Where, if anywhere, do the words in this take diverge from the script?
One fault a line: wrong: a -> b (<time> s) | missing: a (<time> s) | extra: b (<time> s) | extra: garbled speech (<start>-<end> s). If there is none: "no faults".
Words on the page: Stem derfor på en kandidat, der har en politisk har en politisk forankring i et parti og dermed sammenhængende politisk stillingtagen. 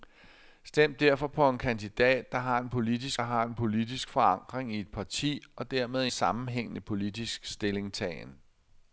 no faults